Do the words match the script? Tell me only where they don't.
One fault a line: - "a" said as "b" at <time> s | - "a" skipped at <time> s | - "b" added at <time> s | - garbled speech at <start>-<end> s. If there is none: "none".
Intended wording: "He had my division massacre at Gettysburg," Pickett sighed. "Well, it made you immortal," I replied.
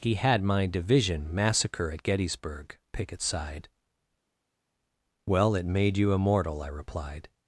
none